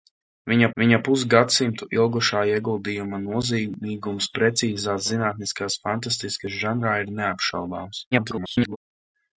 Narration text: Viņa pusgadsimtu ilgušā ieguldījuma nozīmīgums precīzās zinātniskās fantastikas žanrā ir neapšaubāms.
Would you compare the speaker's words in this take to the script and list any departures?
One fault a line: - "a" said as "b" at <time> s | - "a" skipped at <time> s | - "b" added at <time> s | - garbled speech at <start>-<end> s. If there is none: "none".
- "viņa" added at 0.8 s
- garbled speech at 8.1-8.8 s